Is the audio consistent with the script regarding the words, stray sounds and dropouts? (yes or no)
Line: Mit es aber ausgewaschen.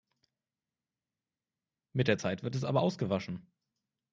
no